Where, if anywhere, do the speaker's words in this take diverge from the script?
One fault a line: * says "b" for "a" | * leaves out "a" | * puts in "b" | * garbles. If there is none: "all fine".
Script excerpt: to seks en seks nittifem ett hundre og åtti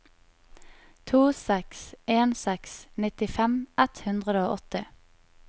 all fine